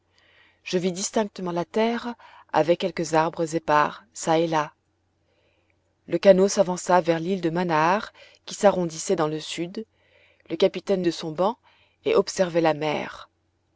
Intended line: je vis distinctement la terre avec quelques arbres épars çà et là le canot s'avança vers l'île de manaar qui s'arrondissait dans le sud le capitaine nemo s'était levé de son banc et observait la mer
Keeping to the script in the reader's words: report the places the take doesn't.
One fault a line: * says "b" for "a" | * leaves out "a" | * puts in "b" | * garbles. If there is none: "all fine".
* leaves out "nemo s'était levé"